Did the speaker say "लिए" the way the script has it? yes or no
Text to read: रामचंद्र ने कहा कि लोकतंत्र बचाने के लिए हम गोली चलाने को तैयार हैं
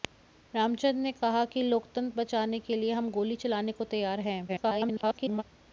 yes